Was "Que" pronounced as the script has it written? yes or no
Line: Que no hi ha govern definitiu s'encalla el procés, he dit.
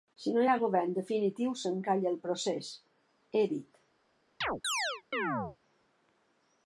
no